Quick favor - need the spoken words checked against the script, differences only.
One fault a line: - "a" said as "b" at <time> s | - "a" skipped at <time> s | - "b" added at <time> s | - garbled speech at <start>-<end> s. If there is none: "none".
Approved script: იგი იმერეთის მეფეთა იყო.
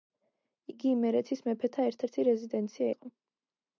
- "ერთ ერთი რეზიდენცია" added at 1.9 s